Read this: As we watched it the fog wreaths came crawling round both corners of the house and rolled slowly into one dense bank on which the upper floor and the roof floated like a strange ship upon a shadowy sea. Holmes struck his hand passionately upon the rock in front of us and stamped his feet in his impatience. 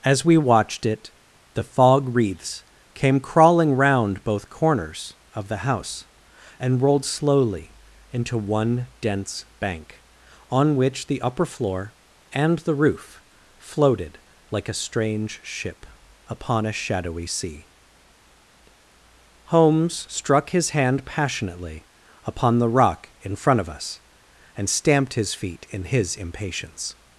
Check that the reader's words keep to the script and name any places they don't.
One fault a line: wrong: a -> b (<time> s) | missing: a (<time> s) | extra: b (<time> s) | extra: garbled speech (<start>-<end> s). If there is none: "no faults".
no faults